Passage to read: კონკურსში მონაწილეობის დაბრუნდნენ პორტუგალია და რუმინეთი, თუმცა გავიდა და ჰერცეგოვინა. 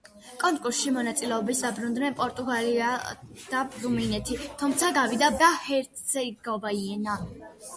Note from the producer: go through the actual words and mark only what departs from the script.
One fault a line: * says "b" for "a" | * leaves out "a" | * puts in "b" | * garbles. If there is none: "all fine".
all fine